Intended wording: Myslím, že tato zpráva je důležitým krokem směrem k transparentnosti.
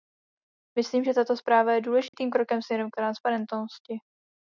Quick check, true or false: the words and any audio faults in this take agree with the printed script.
false